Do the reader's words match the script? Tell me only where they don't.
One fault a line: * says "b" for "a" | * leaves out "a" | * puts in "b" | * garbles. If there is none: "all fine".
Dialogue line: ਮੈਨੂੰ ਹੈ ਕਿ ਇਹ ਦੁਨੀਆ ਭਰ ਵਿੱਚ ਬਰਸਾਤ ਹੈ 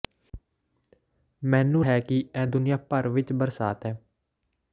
all fine